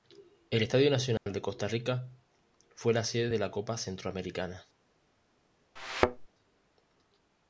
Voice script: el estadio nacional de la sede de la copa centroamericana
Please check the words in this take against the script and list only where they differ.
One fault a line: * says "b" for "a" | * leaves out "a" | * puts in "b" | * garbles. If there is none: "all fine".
* puts in "costa rica fue"